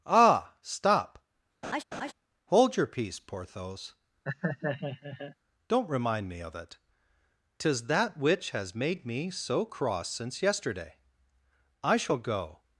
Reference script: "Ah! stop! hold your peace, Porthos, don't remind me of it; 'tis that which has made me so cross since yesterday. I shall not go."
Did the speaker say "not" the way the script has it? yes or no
no